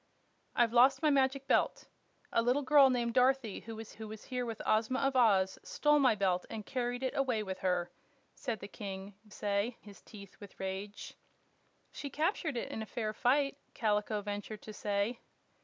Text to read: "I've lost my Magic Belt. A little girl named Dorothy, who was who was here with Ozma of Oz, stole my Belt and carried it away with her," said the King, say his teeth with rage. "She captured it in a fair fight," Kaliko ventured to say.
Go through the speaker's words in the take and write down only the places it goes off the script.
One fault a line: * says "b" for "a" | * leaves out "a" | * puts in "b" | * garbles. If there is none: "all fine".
all fine